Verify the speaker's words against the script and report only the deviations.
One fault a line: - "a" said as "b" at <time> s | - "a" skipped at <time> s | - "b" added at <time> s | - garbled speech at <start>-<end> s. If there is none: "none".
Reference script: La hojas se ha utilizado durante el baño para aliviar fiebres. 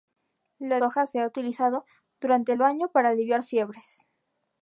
none